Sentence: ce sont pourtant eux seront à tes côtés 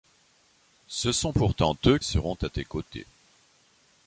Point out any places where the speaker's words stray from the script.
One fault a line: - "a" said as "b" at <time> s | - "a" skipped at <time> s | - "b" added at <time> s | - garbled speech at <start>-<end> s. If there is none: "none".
none